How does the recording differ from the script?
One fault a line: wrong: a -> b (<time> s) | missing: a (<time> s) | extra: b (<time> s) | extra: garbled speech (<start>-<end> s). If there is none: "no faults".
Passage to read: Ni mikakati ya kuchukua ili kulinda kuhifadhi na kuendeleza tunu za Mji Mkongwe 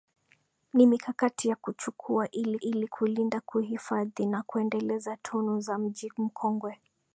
extra: ili (2.6 s)